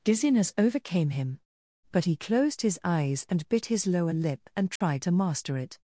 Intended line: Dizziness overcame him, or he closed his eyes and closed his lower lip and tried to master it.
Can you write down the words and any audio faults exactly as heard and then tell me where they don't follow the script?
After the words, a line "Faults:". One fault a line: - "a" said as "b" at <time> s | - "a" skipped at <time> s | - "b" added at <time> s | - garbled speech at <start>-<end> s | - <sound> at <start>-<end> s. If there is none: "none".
Dizziness overcame him, but he closed his eyes and bit his lower lip and tried to master it.
Faults:
- "or" said as "but" at 1.9 s
- "closed" said as "bit" at 3.5 s
- dropout at 4.8-4.8 s